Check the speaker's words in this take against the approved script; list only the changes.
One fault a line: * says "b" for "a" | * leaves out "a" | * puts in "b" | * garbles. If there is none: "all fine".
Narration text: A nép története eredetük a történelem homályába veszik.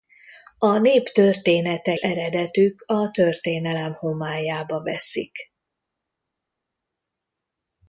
all fine